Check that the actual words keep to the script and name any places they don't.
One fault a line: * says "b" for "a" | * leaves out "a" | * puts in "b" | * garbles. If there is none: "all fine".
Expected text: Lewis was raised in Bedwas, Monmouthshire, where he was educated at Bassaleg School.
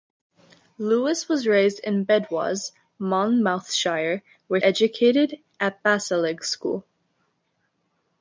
* leaves out "he was"